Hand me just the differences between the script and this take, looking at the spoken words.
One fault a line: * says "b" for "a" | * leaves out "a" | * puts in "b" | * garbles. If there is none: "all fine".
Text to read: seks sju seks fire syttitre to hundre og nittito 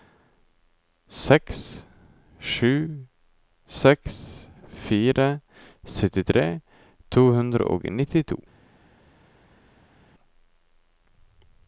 all fine